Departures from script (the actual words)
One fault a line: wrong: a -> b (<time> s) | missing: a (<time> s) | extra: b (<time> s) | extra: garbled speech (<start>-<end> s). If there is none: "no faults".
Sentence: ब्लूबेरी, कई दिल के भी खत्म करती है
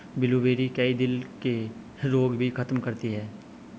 extra: रोग (2.0 s)